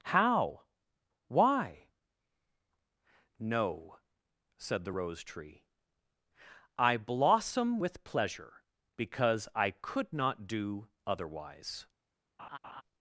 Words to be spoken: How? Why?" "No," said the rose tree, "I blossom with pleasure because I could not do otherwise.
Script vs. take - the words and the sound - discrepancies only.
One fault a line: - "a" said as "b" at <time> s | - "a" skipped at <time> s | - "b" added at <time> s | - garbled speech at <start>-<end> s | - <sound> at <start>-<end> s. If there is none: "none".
- laugh at 12.4-12.8 s